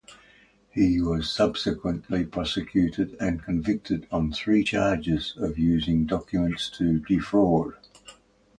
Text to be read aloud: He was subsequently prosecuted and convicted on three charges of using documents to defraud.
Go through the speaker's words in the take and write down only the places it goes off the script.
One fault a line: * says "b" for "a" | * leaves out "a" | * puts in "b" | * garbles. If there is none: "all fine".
all fine